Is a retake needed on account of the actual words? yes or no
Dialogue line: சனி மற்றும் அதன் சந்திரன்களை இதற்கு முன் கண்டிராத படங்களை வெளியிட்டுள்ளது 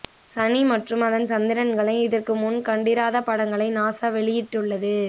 yes